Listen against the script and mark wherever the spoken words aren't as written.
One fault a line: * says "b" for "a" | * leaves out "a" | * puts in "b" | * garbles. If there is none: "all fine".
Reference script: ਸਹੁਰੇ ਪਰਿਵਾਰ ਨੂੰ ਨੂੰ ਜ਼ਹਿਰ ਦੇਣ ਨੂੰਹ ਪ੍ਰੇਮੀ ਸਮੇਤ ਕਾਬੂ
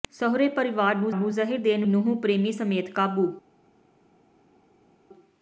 all fine